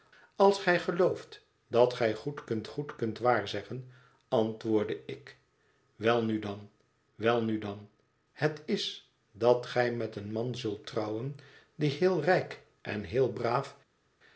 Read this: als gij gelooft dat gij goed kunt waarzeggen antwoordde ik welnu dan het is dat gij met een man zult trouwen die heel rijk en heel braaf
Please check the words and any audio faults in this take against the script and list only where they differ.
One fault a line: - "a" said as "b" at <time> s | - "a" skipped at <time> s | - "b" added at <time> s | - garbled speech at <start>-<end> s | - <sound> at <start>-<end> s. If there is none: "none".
- "goed kunt" added at 2.6 s
- "welnu dan" added at 7.1 s